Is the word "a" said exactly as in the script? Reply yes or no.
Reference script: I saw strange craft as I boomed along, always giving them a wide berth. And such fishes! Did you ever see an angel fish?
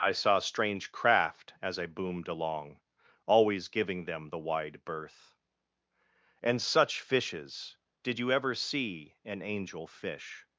no